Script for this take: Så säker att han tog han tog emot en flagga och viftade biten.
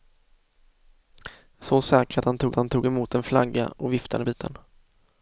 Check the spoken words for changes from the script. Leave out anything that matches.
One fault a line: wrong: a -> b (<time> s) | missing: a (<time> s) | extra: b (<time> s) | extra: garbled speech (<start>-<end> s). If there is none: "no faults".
no faults